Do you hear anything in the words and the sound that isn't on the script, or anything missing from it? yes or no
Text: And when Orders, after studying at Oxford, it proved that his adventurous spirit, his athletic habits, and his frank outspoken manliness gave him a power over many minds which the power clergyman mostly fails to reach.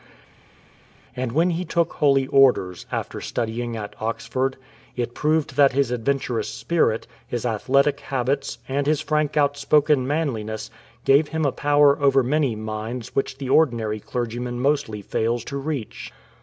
yes